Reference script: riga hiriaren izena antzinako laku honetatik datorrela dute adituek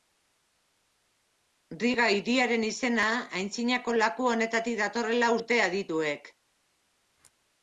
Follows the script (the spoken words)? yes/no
yes